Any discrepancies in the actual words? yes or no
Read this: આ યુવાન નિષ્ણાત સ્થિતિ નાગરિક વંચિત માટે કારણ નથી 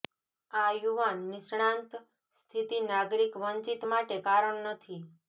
no